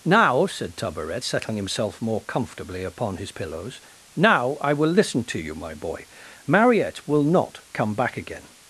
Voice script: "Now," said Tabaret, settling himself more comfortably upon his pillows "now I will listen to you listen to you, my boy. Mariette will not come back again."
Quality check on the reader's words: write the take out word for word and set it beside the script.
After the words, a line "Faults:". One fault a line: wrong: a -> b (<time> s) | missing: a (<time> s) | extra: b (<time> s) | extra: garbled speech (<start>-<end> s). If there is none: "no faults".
"Now," said Tabaret, settling himself more comfortably upon his pillows "now I will listen to you, my boy. Mariette will not come back again."
Faults:
missing: listen to you (5.6 s)